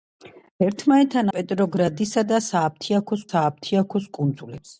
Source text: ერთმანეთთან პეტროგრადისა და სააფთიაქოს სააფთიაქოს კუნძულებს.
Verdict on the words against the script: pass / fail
pass